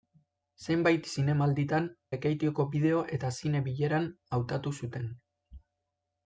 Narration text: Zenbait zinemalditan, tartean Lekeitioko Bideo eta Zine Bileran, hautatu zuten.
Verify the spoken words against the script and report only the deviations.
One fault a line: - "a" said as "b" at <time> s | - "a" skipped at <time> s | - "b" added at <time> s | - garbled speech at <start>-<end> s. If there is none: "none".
- "tartean" skipped at 1.9 s